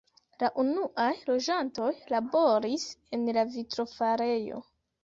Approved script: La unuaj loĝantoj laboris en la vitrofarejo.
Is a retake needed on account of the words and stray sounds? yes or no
no